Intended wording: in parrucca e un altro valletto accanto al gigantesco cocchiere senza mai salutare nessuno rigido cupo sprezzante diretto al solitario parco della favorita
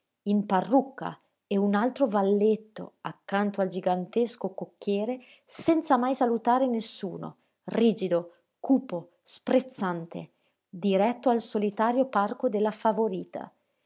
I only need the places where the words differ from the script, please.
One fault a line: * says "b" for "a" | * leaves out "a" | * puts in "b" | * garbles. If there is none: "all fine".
all fine